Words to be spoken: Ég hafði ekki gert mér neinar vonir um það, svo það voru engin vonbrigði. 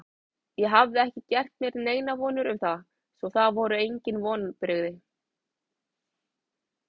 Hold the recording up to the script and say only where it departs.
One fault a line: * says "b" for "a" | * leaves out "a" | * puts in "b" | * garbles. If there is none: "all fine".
all fine